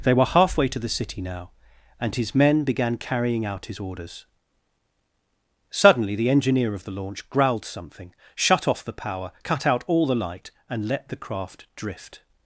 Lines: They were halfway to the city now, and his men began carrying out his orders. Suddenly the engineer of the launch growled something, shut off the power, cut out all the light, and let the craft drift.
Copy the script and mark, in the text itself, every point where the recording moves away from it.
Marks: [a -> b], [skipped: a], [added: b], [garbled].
They were halfway to the city now, and his men began carrying out his orders. Suddenly the engineer of the launch growled something, shut off the power, cut out all the light, and let the craft drift.